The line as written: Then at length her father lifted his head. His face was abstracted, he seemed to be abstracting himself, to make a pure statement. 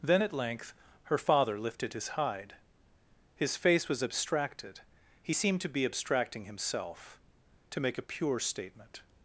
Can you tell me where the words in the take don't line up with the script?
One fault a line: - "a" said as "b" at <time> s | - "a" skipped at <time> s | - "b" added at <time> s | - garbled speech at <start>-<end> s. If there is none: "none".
- "head" said as "hide" at 2.1 s